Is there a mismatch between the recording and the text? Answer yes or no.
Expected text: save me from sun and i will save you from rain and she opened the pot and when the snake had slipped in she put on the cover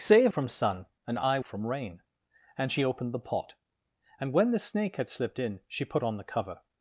yes